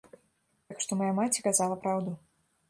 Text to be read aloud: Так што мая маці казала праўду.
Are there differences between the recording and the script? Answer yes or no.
no